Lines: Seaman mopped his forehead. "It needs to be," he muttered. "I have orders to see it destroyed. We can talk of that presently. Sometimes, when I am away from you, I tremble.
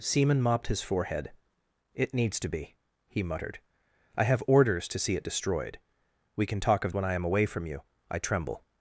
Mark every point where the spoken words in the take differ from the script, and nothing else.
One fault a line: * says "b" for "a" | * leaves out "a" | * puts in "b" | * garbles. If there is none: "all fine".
* leaves out "that presently Sometimes"